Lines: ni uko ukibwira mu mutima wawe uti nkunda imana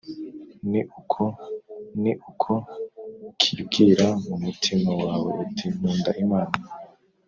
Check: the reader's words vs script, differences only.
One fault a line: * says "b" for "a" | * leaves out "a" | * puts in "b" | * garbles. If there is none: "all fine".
* puts in "ni uko"